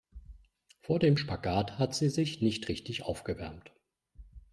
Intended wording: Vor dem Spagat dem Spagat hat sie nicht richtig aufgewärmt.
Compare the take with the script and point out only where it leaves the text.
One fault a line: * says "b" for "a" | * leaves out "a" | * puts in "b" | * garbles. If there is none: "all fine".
* leaves out "dem Spagat"
* puts in "sich"